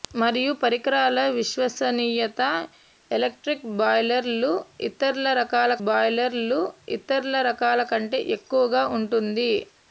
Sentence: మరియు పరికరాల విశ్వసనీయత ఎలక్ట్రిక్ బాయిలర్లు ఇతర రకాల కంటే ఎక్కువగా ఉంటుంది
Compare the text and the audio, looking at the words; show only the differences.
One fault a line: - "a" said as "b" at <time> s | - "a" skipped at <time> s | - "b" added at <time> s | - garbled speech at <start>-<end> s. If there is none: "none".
- "బాయిలర్లు ఇతర రకాల" added at 5.8 s